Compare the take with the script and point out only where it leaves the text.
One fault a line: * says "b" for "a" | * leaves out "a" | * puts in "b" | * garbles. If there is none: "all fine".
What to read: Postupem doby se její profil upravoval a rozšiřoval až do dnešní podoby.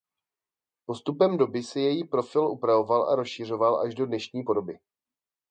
all fine